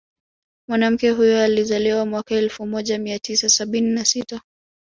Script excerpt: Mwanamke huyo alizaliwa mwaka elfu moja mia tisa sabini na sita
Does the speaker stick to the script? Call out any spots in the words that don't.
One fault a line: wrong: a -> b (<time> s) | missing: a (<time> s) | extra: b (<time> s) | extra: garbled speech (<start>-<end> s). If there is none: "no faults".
no faults